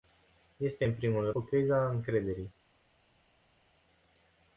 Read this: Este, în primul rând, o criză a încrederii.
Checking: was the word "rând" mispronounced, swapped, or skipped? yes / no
yes